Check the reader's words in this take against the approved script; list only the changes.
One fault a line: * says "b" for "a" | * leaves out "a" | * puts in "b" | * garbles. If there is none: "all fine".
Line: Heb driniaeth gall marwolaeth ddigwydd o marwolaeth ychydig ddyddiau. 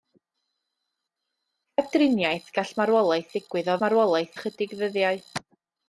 all fine